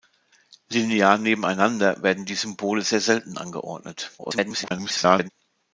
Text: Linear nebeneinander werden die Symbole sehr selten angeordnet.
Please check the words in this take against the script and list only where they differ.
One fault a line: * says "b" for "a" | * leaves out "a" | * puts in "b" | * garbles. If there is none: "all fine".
* garbles